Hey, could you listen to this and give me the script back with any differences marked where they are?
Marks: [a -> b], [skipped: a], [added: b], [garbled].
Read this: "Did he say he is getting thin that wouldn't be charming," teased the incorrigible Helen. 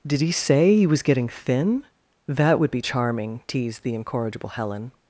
"Did he say he [is -> was] getting thin that [wouldn't -> would] be charming," teased the incorrigible Helen.